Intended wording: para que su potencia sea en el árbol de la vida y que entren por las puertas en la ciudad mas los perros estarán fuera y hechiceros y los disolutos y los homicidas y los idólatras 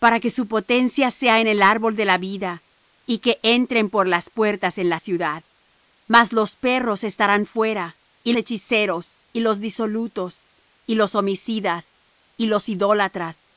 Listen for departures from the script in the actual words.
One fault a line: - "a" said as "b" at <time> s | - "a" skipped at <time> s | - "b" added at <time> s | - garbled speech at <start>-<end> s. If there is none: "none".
none